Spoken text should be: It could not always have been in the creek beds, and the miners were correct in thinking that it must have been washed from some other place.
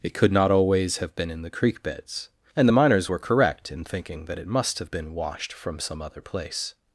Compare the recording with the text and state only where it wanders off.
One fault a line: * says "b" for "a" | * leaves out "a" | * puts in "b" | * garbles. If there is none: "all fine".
all fine